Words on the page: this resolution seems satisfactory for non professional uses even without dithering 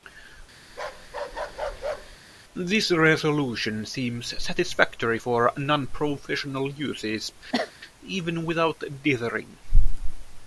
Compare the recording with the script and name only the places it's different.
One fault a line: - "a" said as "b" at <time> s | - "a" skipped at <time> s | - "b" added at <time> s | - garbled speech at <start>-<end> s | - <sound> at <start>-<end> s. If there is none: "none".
- bark at 0.7-2.2 s
- cough at 7.5-7.7 s